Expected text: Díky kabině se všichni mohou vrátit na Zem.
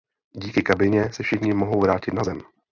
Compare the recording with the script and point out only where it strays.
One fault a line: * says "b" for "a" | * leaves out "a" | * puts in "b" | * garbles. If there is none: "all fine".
all fine